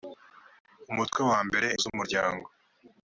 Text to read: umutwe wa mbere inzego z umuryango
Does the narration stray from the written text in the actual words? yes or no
yes